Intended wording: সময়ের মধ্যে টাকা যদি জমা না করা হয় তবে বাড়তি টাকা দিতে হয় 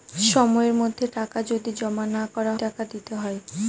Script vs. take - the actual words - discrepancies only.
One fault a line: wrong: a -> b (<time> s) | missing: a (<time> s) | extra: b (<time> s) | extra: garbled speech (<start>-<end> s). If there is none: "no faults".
missing: হয় তবে বাড়তি (2.5 s)